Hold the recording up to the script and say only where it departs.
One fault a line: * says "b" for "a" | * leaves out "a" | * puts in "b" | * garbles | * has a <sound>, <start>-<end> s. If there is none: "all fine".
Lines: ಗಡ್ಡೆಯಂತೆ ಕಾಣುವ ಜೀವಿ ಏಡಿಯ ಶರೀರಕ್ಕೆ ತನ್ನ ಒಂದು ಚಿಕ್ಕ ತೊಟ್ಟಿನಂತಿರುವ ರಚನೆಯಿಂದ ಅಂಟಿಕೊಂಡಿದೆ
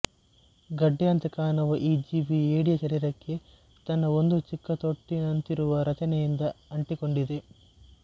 * puts in "ಈ"